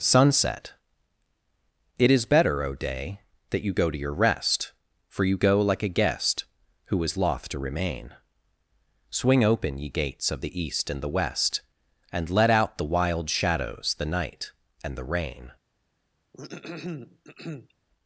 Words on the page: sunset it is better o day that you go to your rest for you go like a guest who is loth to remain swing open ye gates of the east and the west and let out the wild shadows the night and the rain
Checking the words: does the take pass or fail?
pass